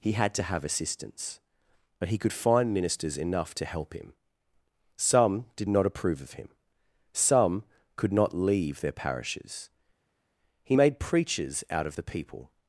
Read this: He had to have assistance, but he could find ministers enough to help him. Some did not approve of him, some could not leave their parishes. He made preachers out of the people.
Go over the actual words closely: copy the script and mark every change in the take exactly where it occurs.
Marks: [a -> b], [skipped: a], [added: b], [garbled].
He had to have assistance, but he could find ministers enough to help him. Some did not approve of him, some could not leave their parishes. He made preachers out of the people.